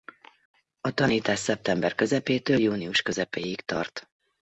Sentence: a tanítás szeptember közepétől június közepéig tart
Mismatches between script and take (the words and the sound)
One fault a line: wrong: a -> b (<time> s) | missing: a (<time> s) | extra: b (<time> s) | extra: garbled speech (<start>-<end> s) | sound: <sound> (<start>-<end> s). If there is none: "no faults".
no faults